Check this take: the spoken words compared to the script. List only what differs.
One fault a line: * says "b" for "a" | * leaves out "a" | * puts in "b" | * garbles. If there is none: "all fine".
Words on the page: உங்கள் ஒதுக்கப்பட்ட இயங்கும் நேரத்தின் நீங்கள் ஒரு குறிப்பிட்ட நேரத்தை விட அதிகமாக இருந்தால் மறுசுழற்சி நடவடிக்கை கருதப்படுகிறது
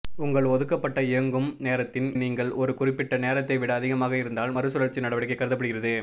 all fine